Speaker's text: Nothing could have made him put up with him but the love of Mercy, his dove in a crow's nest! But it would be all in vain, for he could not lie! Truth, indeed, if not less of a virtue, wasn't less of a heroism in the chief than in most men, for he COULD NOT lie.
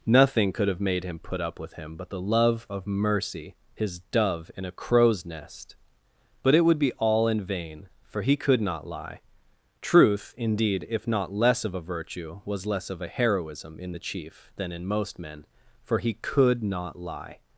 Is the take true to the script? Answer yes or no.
no